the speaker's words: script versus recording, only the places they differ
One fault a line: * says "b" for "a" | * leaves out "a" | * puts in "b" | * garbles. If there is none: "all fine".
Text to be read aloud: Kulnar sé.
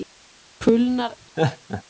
all fine